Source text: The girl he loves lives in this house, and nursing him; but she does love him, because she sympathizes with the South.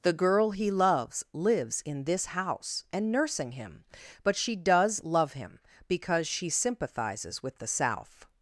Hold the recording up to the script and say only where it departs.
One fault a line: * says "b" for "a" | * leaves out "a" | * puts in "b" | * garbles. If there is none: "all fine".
all fine